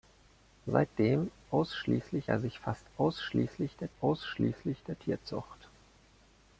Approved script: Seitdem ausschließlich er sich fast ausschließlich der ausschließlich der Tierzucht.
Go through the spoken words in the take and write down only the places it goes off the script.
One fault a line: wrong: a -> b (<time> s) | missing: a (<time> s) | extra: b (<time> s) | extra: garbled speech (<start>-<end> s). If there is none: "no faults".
no faults